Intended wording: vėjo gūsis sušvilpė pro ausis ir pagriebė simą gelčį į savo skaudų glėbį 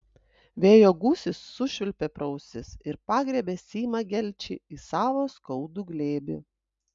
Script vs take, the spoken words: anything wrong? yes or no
no